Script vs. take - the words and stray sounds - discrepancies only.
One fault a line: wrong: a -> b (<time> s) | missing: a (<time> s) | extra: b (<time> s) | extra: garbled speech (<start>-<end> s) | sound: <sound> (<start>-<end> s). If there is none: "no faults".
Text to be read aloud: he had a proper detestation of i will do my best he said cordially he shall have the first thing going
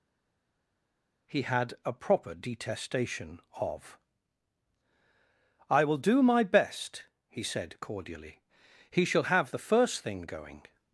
no faults